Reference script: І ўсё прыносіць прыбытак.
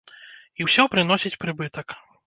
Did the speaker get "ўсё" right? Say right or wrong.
right